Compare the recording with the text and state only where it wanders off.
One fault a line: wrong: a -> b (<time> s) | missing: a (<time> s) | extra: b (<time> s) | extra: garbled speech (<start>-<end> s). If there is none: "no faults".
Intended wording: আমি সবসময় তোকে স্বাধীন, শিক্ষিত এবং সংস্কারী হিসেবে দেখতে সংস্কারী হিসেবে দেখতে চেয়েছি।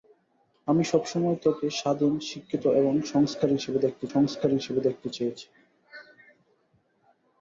no faults